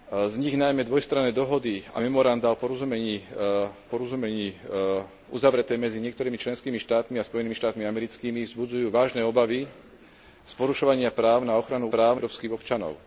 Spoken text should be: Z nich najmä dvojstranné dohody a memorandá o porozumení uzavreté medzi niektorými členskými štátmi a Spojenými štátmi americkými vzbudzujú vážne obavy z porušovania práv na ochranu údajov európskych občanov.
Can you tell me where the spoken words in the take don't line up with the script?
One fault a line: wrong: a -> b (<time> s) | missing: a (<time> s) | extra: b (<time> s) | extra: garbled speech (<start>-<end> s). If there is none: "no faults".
extra: porozumení (3.9 s)
wrong: údajov -> práv (11.9 s)